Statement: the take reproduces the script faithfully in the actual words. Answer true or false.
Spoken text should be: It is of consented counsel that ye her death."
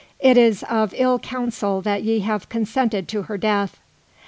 false